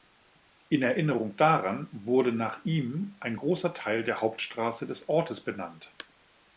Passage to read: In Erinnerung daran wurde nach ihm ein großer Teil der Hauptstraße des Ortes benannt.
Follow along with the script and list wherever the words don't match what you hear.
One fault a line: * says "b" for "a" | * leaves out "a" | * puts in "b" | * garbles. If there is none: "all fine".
all fine